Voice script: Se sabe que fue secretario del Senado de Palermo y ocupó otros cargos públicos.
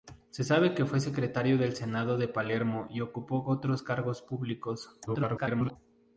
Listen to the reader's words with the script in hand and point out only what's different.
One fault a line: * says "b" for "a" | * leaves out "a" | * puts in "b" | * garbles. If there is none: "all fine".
* garbles